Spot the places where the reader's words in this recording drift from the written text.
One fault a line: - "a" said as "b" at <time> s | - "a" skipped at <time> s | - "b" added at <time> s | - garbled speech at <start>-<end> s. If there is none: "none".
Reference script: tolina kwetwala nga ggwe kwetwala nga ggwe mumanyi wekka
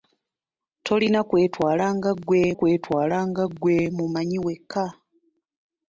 none